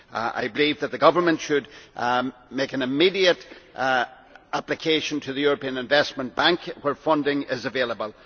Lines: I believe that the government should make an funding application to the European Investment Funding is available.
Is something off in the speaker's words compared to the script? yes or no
yes